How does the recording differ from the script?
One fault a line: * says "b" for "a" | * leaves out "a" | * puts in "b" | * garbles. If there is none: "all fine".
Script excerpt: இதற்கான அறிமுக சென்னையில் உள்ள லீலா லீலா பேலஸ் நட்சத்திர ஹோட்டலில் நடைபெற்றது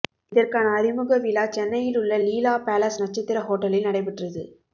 * puts in "விழா"
* leaves out "லீலா"